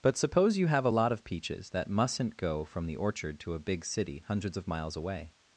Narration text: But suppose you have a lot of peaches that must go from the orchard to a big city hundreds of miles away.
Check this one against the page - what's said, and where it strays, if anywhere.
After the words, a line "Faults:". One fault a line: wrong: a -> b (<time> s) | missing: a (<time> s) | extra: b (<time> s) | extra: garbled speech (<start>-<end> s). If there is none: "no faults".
But suppose you have a lot of peaches that mustn't go from the orchard to a big city hundreds of miles away.
Faults:
wrong: must -> mustn't (1.9 s)